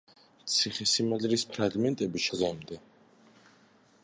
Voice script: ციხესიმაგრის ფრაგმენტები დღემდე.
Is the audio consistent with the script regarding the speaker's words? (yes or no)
yes